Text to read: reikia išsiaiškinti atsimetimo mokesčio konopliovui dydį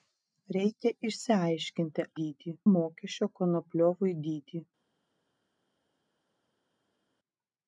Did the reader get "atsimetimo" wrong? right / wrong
wrong